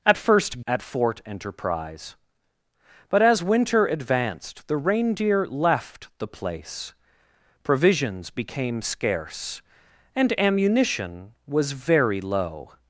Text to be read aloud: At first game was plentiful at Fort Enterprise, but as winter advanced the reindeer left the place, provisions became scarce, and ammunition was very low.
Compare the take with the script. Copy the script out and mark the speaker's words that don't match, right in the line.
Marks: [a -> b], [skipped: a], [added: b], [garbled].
At first [skipped: game was plentiful] at Fort Enterprise, but as winter advanced the reindeer left the place, provisions became scarce, and ammunition was very low.